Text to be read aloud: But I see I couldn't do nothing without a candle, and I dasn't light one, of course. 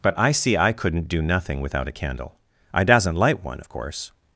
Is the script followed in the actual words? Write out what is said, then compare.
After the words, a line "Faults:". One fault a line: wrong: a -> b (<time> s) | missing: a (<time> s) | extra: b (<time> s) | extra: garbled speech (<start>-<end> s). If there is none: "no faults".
But I see I couldn't do nothing without a candle, I dasn't light one, of course.
Faults:
missing: and (2.4 s)